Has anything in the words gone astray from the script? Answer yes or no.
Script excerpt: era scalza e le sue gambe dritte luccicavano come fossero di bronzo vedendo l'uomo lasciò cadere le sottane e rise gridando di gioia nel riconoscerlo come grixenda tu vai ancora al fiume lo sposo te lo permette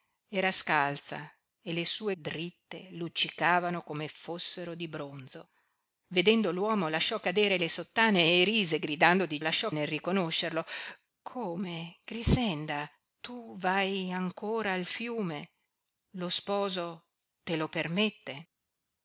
yes